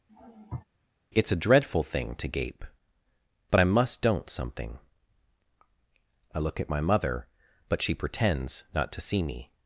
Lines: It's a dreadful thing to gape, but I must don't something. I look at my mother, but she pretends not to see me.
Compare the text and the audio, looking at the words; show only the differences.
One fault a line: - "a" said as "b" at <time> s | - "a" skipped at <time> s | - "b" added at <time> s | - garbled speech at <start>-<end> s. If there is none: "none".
none